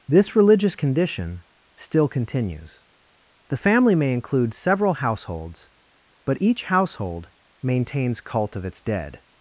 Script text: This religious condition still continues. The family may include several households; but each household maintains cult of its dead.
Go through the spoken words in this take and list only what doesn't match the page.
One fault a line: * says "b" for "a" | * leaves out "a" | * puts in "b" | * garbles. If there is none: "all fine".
all fine